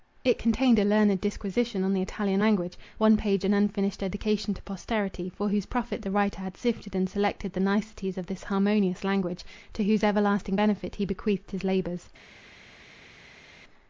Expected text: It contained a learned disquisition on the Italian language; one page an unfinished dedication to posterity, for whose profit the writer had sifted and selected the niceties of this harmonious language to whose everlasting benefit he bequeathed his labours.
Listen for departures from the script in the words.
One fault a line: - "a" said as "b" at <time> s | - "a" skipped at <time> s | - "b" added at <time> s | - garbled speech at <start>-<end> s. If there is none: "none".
none